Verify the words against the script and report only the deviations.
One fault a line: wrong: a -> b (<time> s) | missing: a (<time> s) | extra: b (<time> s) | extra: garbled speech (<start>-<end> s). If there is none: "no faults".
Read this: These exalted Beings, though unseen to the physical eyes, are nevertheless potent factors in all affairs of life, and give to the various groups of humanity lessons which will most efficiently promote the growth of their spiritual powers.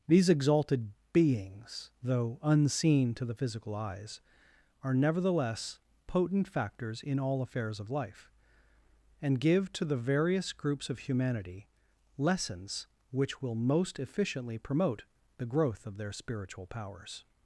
no faults